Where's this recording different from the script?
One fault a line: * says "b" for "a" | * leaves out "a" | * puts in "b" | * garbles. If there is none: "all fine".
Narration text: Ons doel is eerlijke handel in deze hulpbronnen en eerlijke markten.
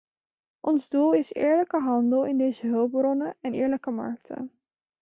all fine